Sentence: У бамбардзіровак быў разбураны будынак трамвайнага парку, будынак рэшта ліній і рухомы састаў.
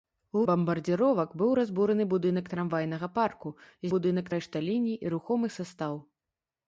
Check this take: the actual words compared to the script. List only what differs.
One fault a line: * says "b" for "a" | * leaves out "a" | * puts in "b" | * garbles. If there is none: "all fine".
all fine